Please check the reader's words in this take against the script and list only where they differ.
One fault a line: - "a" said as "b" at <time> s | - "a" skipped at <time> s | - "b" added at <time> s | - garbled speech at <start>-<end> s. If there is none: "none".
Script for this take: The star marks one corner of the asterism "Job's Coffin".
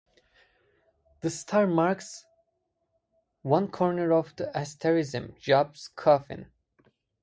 none